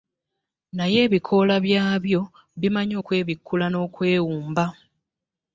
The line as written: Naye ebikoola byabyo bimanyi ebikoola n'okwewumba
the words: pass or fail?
fail